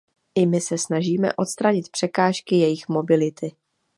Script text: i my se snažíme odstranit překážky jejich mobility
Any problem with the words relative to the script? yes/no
no